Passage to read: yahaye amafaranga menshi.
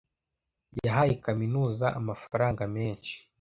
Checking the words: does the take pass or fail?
fail